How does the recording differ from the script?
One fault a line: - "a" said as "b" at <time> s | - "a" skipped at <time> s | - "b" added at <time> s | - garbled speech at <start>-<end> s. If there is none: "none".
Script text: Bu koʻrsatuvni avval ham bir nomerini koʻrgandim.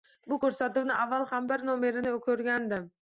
none